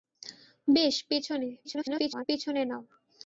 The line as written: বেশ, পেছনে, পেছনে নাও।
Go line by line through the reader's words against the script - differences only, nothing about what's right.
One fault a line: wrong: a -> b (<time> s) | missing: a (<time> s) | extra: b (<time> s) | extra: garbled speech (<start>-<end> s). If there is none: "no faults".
extra: garbled speech (1.6-2.3 s)